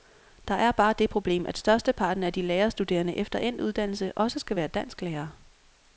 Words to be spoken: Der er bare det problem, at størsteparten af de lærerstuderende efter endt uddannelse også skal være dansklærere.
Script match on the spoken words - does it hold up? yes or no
yes